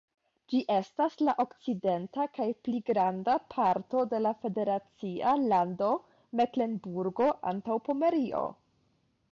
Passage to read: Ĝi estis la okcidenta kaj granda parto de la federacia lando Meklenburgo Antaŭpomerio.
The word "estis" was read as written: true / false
false